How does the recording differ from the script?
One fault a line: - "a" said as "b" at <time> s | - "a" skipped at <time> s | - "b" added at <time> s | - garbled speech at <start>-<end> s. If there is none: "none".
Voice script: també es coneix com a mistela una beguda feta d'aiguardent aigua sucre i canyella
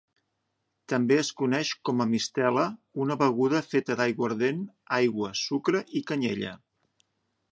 none